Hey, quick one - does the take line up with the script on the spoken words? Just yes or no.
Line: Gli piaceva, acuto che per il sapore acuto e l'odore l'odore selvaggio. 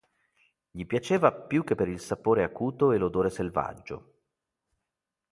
no